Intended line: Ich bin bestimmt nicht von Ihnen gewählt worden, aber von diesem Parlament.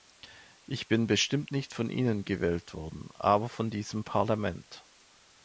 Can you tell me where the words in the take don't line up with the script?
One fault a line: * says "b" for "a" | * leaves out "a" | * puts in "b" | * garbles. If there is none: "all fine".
all fine